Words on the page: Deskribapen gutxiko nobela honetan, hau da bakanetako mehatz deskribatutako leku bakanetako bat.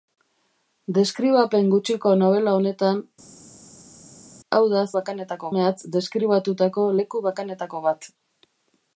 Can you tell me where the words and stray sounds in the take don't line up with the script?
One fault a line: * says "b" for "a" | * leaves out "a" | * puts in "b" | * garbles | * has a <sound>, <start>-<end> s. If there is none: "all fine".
all fine